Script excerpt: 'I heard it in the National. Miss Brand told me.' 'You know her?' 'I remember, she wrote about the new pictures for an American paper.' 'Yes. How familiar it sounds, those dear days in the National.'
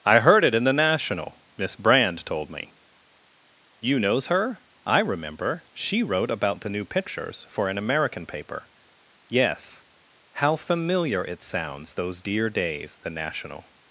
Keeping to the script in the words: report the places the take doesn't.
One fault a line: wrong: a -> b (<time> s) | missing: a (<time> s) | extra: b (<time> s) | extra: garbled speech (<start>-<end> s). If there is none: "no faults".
wrong: know -> knows (4.0 s)
missing: in (13.0 s)